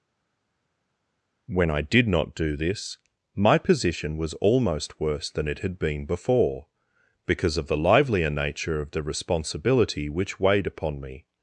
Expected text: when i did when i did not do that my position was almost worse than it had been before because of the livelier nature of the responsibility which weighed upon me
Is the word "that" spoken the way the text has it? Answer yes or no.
no